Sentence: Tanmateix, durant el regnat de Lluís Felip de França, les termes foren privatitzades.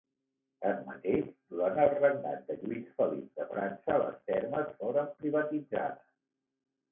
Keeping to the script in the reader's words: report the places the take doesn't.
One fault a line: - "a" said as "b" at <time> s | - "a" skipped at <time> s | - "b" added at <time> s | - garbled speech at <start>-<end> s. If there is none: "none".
none